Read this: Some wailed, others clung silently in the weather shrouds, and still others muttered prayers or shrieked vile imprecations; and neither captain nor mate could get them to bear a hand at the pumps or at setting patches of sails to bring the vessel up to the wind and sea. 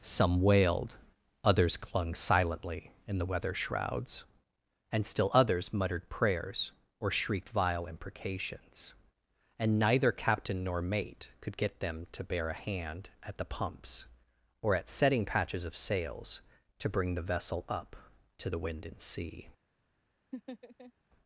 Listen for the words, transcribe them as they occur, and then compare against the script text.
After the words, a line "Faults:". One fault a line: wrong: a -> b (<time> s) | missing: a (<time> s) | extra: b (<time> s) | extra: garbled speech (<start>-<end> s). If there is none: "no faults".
Some wailed, others clung silently in the weather shrouds, and still others muttered prayers or shrieked vile imprecations; and neither captain nor mate could get them to bear a hand at the pumps or at setting patches of sails to bring the vessel up to the wind and sea.
Faults:
no faults